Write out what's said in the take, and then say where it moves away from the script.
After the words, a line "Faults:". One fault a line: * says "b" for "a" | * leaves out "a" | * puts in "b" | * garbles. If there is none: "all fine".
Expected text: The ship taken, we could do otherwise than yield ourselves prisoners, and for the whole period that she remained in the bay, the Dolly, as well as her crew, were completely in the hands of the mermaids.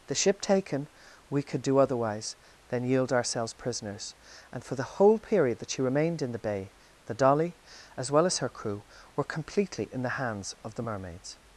The ship taken, we could do otherwise than yield ourselves prisoners, and for the whole period that she remained in the bay, the Dolly, as well as her crew, were completely in the hands of the mermaids.
Faults:
all fine